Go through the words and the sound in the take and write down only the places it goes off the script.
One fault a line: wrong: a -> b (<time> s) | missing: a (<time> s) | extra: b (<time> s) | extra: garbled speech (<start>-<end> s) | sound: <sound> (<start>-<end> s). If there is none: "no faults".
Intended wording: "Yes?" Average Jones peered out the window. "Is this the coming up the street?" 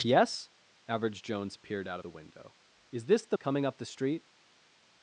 no faults